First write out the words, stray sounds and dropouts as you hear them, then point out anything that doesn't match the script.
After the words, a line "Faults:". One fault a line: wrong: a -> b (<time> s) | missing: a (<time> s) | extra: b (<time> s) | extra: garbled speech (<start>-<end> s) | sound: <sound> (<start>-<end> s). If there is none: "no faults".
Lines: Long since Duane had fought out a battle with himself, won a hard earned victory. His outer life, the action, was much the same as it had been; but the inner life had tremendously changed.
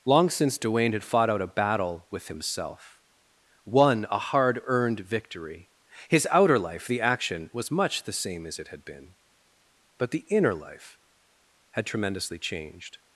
Long since Duane had fought out a battle with himself, won a hard earned victory. His outer life, the action, was much the same as it had been; but the inner life had tremendously changed.
Faults:
no faults